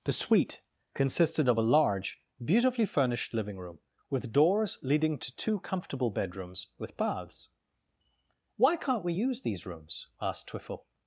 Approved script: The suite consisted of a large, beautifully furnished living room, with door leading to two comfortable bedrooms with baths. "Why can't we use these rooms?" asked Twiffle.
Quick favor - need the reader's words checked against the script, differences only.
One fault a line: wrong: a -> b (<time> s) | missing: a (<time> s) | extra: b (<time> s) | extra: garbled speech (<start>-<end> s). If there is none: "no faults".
wrong: door -> doors (4.3 s)